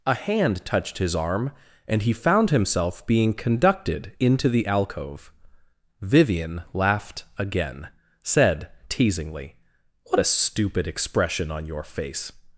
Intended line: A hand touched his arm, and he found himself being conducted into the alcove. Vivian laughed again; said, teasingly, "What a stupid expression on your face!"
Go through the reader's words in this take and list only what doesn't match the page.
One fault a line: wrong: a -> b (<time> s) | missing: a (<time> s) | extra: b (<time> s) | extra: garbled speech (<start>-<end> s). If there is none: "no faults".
no faults